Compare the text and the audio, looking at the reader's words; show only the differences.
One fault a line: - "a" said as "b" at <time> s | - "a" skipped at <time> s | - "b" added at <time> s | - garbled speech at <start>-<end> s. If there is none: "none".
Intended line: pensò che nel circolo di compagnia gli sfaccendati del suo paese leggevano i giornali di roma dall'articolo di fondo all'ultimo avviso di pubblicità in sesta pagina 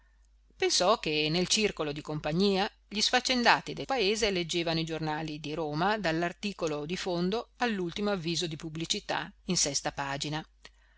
- "suo" skipped at 3.9 s